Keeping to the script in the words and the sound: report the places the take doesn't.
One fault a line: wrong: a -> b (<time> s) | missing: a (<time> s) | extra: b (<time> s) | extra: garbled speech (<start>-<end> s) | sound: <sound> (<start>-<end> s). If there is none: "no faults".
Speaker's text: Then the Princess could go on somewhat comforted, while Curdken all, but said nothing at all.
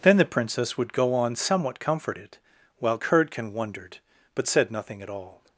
wrong: could -> would (0.8 s)
wrong: all -> wondered (3.5 s)